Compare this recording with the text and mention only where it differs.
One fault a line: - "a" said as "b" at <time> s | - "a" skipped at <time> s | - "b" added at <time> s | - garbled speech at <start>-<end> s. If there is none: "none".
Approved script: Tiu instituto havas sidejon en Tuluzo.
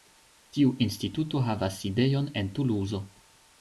none